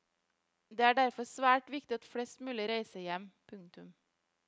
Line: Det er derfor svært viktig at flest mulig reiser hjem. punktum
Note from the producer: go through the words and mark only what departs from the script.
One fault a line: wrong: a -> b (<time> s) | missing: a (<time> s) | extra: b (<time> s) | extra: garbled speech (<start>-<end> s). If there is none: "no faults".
no faults